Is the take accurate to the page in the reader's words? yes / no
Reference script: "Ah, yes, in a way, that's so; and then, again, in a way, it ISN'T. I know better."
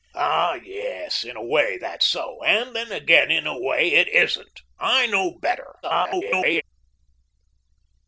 no